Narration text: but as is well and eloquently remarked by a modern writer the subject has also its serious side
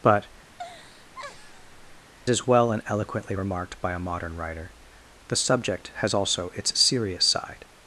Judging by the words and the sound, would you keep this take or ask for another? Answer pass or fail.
fail